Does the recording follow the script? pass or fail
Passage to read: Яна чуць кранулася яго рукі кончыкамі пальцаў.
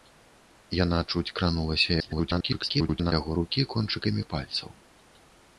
fail